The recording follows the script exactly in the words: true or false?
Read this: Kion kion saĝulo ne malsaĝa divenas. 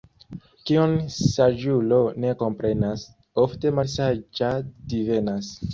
false